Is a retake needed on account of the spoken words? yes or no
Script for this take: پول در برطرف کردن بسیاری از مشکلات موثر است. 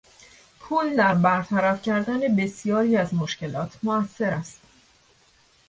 no